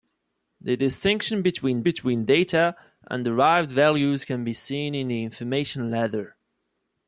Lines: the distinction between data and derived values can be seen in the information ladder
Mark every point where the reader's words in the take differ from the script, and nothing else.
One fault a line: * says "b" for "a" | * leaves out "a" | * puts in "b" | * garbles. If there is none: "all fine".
* puts in "between"